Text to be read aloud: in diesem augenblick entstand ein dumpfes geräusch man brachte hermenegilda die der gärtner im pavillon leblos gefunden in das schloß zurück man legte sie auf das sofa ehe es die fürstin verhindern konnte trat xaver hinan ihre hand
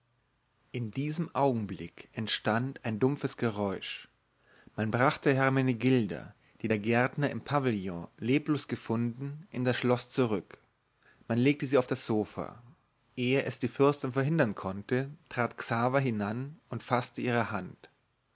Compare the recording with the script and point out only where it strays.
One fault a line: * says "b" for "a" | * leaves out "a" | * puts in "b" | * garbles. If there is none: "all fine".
* puts in "und faßte"